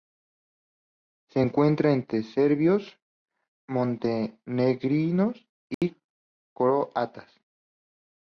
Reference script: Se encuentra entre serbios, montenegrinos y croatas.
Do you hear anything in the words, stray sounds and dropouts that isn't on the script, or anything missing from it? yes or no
yes